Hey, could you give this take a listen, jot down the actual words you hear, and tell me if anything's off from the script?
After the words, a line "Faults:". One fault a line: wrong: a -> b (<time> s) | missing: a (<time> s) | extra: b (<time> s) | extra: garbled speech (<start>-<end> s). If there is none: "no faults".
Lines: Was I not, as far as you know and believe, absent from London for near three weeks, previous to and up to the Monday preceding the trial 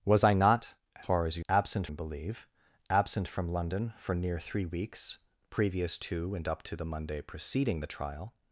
Was I not, far as you absent and believe, absent from London for near three weeks, previous to and up to the Monday preceding the trial
Faults:
missing: as (0.7 s)
wrong: know -> absent (1.5 s)